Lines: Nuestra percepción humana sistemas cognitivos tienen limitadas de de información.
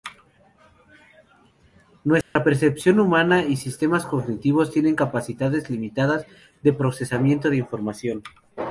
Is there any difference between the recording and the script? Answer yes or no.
yes